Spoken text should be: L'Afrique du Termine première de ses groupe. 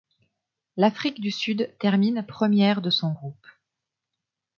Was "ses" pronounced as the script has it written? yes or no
no